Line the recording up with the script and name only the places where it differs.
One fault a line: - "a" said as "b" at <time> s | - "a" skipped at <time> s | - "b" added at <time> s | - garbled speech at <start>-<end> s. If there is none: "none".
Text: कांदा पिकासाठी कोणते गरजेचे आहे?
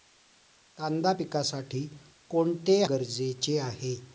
none